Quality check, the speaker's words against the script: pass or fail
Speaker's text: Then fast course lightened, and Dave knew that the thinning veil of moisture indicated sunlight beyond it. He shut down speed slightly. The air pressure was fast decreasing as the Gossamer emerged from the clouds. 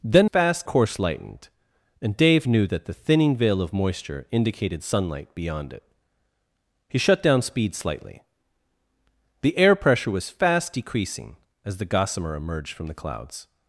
pass